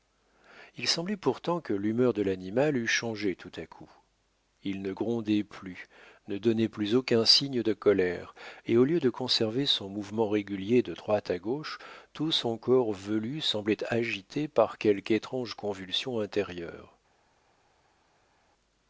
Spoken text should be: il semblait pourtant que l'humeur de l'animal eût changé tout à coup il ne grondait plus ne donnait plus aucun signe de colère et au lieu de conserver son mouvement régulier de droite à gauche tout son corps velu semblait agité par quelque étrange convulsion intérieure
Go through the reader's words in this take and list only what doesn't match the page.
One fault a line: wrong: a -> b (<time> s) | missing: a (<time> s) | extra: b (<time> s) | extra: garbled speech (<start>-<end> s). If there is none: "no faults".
no faults